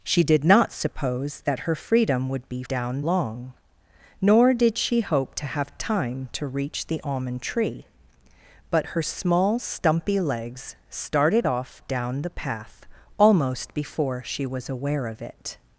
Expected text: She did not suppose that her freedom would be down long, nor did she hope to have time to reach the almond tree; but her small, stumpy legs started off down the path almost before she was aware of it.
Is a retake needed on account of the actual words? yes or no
no